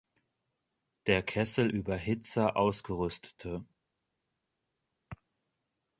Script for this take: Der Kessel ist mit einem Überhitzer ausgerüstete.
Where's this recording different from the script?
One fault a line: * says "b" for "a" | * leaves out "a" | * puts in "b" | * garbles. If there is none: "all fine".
* leaves out "ist mit einem"